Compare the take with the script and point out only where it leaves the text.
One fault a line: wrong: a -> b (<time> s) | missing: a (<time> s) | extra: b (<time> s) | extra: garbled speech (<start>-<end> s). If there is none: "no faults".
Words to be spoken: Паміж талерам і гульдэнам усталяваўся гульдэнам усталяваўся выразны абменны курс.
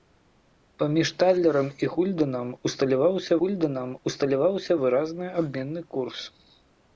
no faults